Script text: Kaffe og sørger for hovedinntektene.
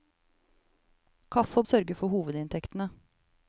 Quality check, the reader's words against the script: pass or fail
pass